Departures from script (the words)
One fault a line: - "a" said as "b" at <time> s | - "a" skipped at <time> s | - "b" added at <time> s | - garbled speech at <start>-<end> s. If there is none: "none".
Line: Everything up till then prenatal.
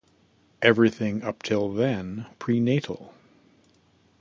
none